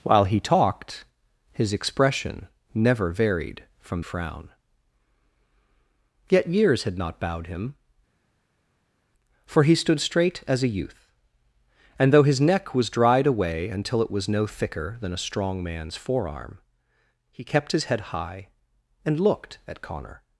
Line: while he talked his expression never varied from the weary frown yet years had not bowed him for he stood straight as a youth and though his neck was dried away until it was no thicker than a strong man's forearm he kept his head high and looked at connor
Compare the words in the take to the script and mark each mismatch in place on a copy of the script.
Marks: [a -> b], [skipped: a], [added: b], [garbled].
while he talked his expression never varied from [skipped: the weary] frown yet years had not bowed him for he stood straight as a youth and though his neck was dried away until it was no thicker than a strong man's forearm he kept his head high and looked at connor